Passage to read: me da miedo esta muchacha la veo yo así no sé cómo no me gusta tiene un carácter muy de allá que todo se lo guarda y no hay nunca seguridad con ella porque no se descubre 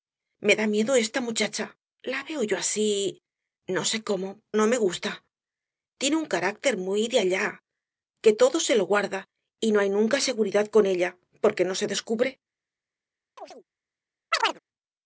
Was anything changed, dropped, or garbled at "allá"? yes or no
no